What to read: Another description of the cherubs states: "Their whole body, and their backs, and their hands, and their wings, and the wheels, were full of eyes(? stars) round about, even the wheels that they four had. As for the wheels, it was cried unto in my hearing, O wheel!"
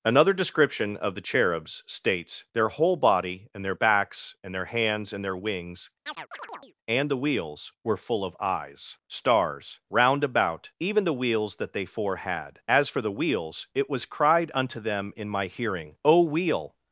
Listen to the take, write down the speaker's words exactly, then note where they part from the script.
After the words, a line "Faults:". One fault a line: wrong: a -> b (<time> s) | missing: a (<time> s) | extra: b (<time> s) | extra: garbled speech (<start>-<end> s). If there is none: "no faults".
Another description of the cherubs states: "Their whole body, and their backs, and their hands, and their wings, and the wheels, were full of eyes(? stars) round about, even the wheels that they four had. As for the wheels, it was cried unto them in my hearing, O wheel!"
Faults:
extra: them (14.8 s)